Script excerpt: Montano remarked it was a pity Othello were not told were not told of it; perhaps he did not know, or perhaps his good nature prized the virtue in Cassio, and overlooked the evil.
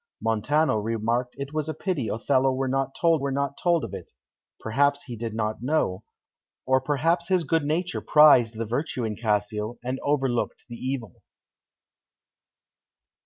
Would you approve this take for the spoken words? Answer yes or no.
yes